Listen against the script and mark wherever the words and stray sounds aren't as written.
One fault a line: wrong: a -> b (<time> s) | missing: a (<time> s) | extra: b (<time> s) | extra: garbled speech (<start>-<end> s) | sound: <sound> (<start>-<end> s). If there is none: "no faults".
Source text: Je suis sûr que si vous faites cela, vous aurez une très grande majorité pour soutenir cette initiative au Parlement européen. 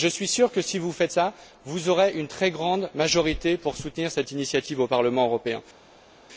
no faults